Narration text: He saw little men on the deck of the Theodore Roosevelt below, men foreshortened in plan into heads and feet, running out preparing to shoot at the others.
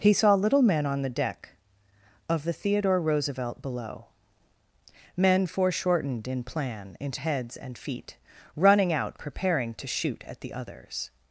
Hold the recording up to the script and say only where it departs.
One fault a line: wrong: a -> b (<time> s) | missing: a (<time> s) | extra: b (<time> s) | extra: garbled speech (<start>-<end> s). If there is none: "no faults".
no faults